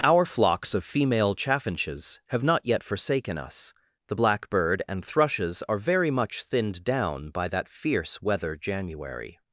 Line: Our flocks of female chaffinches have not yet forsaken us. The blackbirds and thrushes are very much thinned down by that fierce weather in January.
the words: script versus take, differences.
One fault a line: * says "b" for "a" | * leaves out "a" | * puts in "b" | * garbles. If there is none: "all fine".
* says "blackbird" for "blackbirds"
* leaves out "in"